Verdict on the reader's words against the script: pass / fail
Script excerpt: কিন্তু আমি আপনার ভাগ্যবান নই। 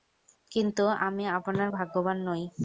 pass